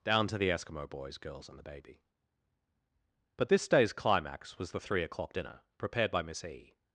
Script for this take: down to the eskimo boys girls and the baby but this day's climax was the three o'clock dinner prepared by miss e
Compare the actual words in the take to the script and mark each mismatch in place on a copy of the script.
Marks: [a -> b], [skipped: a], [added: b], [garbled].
down to the eskimo boys girls and the baby but this day's climax was the three o'clock dinner prepared by miss e